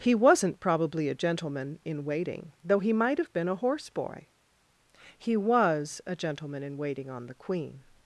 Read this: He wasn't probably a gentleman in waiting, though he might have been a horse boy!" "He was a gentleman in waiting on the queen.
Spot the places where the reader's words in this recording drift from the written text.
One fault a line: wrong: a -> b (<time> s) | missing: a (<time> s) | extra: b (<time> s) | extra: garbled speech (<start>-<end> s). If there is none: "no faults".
no faults